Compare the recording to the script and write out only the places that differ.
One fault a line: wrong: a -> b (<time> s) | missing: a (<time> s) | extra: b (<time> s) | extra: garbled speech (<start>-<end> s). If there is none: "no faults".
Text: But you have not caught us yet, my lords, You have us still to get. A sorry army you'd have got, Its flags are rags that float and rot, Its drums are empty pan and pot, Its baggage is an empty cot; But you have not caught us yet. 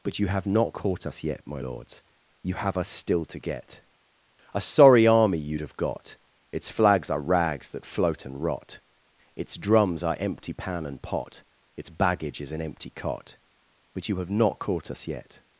no faults